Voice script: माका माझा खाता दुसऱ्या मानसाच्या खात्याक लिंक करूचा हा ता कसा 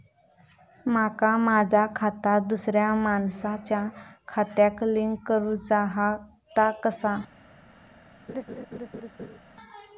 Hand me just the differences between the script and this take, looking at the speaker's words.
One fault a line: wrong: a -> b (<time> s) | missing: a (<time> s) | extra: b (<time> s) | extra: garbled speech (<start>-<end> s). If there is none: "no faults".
no faults